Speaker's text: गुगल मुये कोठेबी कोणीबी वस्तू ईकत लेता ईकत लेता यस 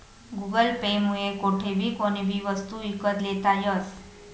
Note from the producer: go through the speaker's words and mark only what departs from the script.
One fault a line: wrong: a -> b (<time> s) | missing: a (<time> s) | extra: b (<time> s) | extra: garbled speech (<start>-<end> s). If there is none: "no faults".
extra: पे (0.8 s)
missing: ईकत लेता (3.6 s)